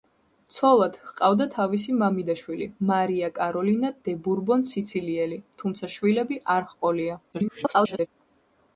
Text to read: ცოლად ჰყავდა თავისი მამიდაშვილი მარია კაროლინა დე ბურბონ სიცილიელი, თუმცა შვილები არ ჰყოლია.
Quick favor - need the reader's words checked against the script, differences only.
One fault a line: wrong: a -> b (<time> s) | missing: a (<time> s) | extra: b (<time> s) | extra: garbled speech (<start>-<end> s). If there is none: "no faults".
extra: garbled speech (7.3-8.1 s)